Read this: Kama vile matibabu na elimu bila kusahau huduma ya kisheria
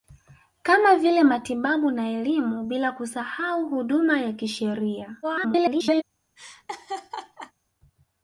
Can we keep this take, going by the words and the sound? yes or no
no